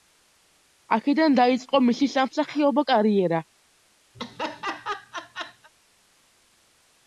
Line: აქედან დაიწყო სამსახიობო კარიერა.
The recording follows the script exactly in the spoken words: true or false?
false